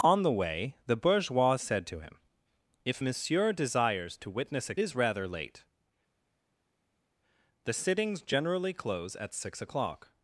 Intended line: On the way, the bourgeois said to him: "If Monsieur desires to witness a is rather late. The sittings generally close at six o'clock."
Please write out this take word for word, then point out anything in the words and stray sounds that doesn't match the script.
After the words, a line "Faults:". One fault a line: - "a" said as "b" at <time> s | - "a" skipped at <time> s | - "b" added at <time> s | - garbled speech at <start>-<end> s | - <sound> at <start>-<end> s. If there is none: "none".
On the way, the bourgeois said to him: "If Monsieur desires to witness a is rather late. The sittings generally close at six o'clock."
Faults:
none